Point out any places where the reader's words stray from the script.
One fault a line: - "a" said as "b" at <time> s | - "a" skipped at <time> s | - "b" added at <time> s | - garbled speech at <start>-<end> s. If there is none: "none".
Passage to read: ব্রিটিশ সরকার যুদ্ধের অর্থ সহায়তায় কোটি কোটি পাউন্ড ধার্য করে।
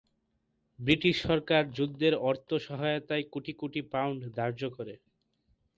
none